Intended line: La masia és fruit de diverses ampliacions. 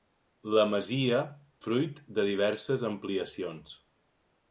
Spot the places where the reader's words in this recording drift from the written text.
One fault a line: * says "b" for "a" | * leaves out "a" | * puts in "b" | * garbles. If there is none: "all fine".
* leaves out "és"